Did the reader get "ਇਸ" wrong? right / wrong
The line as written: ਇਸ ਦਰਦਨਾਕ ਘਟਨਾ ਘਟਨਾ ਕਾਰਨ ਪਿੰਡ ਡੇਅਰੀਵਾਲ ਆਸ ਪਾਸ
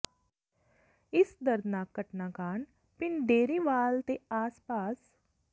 right